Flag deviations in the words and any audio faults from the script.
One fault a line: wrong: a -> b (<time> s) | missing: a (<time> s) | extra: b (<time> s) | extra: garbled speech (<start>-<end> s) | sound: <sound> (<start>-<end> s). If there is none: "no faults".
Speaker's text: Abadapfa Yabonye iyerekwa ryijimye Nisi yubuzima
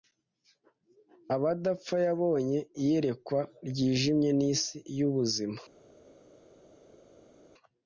no faults